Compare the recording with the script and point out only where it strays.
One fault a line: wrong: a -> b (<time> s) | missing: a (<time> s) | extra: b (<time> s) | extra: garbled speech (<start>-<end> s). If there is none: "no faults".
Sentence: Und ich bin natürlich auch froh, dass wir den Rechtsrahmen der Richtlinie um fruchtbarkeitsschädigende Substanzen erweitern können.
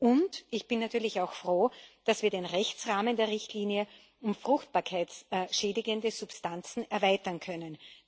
no faults